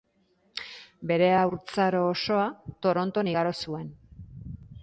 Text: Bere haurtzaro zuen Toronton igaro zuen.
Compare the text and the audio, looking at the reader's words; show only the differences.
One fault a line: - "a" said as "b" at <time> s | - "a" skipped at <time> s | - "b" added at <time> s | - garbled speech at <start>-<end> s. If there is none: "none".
- "zuen" said as "osoa" at 2.1 s